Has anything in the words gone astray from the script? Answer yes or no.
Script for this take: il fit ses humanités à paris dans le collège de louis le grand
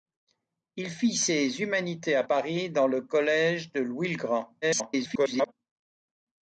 yes